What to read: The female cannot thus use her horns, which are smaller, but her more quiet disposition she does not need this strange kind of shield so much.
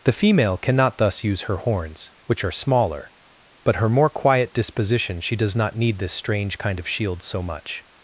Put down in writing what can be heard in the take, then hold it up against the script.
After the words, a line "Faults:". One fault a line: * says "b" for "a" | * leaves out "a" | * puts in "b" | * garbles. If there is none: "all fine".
The female cannot thus use her horns, which are smaller, but her more quiet disposition she does not need this strange kind of shield so much.
Faults:
all fine